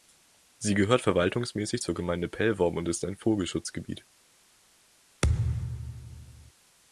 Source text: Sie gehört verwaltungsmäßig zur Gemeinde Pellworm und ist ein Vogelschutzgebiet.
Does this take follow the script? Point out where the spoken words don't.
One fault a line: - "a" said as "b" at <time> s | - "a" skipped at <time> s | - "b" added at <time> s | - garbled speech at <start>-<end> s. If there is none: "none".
none